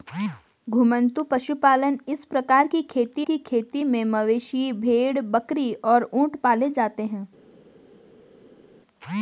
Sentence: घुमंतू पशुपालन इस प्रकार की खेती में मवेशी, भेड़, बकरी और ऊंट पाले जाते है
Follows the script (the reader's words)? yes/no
no